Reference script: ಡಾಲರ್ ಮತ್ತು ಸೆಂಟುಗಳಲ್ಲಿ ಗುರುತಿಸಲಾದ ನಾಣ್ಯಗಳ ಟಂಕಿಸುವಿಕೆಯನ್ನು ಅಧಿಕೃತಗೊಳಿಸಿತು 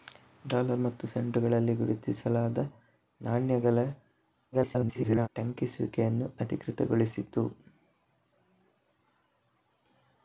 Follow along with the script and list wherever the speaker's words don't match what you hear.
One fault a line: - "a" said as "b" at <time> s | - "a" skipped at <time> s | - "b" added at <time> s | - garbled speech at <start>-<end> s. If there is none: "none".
- garbled speech at 4.5-5.3 s